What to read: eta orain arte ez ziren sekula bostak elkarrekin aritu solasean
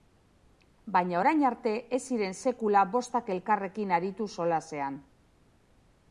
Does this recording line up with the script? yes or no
no